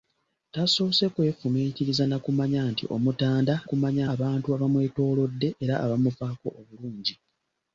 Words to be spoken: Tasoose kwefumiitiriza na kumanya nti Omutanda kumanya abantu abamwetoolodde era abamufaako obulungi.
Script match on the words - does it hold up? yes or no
yes